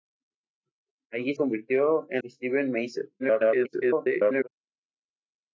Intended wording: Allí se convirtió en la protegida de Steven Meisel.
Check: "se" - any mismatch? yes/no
yes